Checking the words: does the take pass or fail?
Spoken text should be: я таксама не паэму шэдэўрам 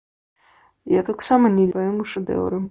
pass